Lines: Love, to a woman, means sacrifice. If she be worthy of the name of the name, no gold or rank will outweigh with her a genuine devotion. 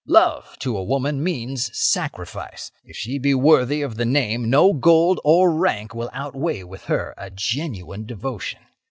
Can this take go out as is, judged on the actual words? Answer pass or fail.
fail